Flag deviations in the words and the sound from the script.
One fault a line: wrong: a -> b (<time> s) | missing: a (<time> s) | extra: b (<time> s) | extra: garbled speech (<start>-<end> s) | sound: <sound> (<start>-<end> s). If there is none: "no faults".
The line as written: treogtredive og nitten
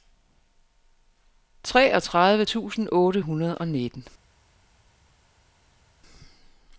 extra: tusind otte hundrede (2.4 s)